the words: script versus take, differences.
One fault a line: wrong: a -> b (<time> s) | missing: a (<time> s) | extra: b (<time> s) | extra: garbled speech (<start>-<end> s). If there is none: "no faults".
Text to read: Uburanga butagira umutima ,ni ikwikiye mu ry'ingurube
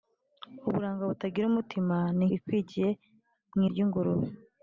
no faults